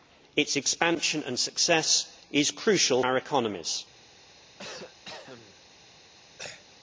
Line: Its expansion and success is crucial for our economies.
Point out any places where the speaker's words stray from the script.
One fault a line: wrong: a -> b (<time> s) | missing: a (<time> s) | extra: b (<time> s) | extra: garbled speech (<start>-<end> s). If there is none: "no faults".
missing: for (3.0 s)